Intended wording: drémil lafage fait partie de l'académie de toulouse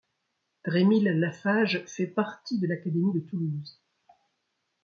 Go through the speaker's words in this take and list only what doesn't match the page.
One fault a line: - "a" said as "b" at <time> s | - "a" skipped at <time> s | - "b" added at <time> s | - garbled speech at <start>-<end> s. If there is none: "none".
none